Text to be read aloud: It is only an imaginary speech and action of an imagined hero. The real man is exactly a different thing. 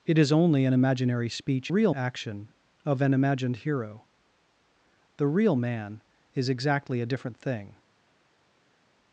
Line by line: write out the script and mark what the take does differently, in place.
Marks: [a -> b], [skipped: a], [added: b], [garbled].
It is only an imaginary speech [and -> real] action of an imagined hero. The real man is exactly a different thing.